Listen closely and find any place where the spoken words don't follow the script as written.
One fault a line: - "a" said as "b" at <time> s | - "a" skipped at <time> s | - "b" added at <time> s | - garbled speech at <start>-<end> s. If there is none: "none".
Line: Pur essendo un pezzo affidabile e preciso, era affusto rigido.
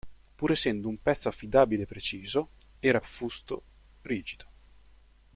none